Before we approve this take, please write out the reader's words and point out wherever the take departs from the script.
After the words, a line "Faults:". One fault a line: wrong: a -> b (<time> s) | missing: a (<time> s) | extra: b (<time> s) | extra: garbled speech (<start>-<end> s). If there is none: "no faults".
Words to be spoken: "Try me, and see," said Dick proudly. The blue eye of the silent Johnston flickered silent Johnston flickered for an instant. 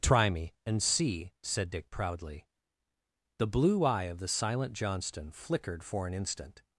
"Try me, and see," said Dick proudly. The blue eye of the silent Johnston flickered for an instant.
Faults:
missing: silent Johnston flickered (5.8 s)